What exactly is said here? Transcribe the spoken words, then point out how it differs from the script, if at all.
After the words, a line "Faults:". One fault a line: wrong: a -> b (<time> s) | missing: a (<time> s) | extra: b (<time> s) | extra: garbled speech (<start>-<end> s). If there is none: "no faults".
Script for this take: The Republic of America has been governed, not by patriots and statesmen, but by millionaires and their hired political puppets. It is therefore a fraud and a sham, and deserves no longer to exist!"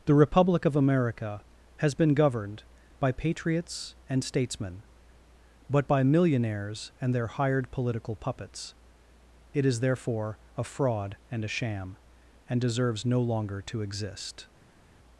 The Republic of America has been governed, by patriots and statesmen, but by millionaires and their hired political puppets. It is therefore a fraud and a sham, and deserves no longer to exist!"
Faults:
missing: not (2.6 s)